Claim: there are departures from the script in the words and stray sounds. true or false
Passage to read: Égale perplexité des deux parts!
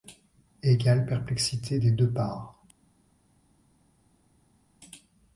false